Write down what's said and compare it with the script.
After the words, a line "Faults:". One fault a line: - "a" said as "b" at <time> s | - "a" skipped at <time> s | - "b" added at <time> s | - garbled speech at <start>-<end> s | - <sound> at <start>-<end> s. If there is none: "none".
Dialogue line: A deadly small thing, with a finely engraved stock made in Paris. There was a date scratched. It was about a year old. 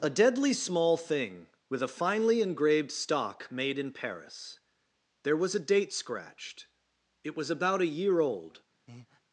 A deadly small thing, with a finely engraved stock made in Paris. There was a date scratched. It was about a year old.
Faults:
- breath at 8.9-9.2 s